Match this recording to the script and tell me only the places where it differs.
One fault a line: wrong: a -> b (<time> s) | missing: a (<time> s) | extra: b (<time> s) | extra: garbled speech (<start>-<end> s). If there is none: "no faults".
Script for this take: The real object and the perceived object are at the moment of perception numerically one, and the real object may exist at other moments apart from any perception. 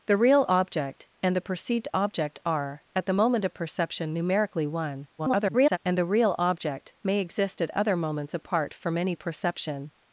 extra: garbled speech (5.2-5.8 s)